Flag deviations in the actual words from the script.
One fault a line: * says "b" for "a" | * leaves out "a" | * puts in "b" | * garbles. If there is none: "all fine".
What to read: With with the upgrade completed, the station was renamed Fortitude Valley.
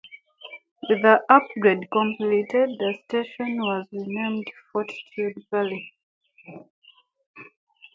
* leaves out "with"